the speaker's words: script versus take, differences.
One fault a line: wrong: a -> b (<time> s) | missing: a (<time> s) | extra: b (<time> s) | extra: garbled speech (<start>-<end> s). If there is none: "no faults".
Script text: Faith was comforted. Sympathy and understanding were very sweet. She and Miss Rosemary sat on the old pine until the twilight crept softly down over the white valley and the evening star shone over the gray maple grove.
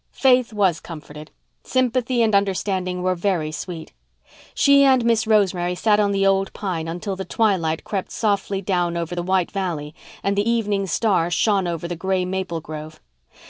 no faults